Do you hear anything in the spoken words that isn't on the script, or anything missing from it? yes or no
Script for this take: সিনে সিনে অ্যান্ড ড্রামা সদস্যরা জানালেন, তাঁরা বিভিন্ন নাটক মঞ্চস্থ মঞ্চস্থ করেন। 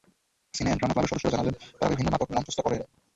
yes